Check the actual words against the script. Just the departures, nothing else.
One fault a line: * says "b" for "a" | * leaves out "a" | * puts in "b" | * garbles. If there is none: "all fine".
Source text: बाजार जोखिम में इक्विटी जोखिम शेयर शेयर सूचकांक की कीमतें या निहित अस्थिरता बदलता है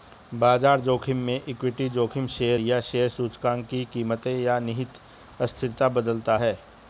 * puts in "या"